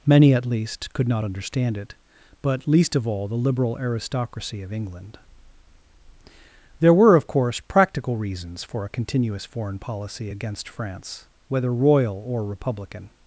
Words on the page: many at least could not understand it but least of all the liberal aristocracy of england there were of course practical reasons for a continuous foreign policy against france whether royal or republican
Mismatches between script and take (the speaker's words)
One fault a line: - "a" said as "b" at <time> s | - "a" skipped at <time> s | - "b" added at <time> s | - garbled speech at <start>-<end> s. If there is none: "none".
none